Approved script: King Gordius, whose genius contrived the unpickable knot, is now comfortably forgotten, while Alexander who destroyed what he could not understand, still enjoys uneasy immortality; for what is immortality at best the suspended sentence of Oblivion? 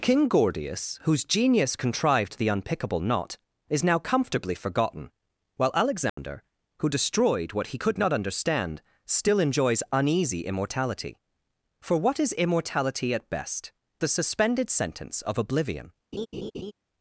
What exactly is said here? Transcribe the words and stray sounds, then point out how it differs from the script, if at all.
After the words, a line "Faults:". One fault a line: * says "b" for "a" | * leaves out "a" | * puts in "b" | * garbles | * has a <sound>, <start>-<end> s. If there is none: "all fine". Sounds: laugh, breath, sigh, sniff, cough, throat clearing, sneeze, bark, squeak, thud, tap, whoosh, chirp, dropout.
King Gordius, whose genius contrived the unpickable knot, is now comfortably forgotten, while Alexander who destroyed what he could not understand, still enjoys uneasy immortality; for what is immortality at best the suspended sentence of Oblivion?
Faults:
* has a dropout, 6.1-6.2 s
* has a laugh, 16.1-16.7 s